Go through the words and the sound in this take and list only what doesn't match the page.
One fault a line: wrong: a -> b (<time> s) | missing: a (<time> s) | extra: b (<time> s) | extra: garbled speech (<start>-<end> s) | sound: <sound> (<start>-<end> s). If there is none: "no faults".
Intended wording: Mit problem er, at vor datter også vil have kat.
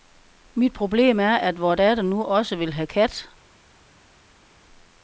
extra: nu (2.0 s)